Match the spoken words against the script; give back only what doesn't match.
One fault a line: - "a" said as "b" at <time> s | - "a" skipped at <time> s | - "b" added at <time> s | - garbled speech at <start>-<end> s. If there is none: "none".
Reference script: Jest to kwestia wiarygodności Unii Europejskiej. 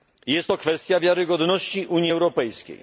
none